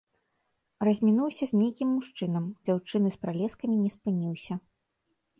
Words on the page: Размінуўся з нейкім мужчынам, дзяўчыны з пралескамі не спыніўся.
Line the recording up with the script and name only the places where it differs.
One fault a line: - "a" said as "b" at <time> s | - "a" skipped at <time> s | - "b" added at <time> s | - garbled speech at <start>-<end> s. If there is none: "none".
none